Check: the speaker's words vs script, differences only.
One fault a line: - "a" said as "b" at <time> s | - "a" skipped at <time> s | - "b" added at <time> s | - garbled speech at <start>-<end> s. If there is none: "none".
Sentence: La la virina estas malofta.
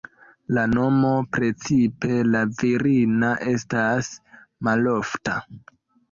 - "nomo precipe" added at 0.7 s